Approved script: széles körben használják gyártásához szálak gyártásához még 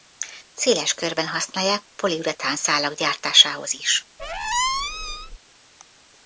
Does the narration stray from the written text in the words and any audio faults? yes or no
yes